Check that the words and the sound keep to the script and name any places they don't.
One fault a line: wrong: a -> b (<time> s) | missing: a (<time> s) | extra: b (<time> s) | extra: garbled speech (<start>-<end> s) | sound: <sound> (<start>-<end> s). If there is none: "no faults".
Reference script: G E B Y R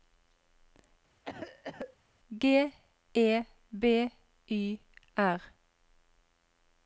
sound: cough (1.2-2.0 s)